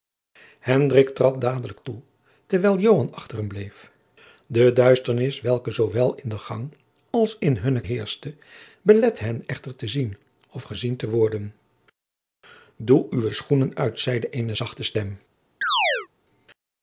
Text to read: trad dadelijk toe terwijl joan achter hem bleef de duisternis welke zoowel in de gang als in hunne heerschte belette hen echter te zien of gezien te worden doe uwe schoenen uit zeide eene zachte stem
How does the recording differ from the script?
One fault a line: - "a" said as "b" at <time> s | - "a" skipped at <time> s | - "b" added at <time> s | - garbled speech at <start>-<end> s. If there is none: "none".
none